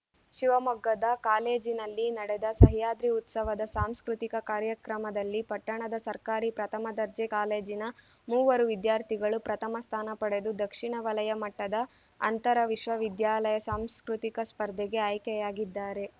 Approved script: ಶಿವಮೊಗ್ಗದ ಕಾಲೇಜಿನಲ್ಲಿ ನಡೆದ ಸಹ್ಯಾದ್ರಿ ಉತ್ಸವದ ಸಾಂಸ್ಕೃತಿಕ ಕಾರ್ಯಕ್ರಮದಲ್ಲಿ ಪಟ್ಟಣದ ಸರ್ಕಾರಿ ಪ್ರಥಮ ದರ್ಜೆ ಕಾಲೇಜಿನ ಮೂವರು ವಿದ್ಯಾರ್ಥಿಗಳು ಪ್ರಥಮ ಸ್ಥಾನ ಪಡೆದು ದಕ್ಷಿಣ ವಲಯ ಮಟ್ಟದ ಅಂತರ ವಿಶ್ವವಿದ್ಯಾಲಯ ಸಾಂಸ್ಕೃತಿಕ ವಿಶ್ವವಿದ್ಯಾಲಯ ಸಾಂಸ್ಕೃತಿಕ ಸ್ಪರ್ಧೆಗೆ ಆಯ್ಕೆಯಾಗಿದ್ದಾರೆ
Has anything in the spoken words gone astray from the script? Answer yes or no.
yes